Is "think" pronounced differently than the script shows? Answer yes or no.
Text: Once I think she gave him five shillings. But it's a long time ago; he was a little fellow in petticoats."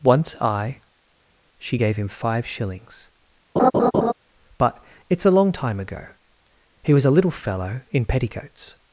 yes